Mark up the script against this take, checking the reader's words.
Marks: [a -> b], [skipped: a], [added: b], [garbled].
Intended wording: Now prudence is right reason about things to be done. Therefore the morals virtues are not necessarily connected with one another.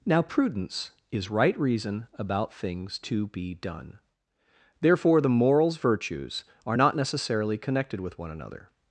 Now prudence is right reason about things to be done. Therefore the morals virtues are not necessarily connected with one another.